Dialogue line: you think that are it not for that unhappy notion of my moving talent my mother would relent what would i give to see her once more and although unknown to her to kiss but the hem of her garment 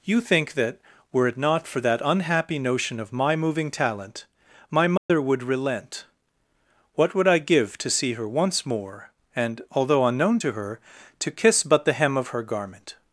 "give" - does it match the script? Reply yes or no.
yes